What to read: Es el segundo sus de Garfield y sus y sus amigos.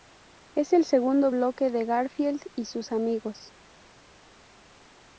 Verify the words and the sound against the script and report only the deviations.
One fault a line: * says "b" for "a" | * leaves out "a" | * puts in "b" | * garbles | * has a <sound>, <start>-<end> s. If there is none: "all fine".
* says "bloque" for "sus"
* leaves out "y sus"